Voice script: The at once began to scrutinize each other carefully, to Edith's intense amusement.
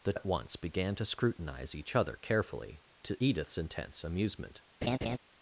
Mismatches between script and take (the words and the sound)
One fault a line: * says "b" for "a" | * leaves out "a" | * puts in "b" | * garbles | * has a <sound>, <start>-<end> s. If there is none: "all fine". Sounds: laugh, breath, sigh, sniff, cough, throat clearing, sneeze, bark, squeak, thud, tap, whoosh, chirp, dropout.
* has a laugh, 4.8-5.2 s